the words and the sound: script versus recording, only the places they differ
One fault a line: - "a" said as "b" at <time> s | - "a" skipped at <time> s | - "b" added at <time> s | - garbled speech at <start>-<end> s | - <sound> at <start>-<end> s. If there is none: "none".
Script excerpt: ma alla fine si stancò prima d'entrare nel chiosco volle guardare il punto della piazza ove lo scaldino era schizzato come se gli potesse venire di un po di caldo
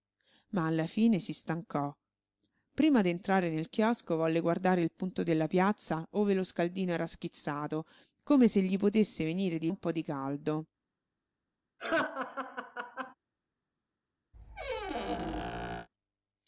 - laugh at 11.8-13.1 s
- squeak at 14.3-15.9 s